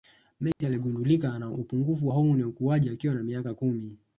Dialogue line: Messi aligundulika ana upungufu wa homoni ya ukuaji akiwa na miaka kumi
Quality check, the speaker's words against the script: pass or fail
fail